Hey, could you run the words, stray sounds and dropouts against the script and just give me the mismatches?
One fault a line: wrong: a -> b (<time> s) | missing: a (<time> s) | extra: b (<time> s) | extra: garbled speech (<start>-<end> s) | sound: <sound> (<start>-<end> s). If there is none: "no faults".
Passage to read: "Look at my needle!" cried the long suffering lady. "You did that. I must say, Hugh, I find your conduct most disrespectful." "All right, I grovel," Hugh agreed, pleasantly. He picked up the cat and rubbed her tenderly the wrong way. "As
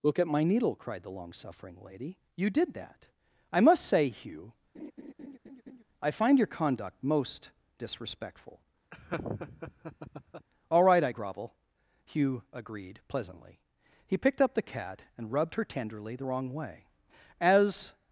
sound: laugh (4.7-5.8 s)
sound: laugh (8.9-10.5 s)